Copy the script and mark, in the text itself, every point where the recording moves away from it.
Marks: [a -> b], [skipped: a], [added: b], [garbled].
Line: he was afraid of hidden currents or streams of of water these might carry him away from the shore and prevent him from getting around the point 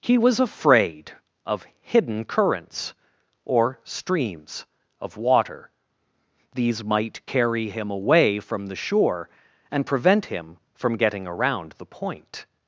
he was afraid of hidden currents or streams of [skipped: of] water these might carry him away from the shore and prevent him from getting around the point